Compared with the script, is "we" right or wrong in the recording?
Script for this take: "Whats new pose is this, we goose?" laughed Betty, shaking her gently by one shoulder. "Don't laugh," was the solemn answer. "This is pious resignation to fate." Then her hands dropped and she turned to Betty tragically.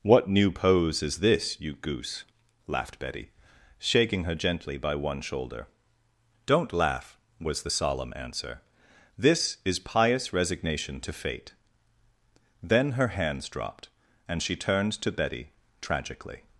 wrong